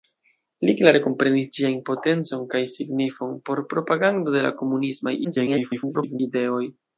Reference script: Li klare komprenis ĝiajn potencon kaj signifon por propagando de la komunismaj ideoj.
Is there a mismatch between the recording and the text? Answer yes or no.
yes